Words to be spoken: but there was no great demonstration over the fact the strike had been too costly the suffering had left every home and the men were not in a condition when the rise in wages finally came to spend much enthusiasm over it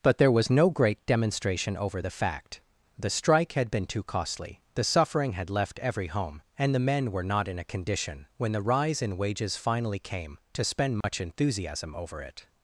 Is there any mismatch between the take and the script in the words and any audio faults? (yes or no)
yes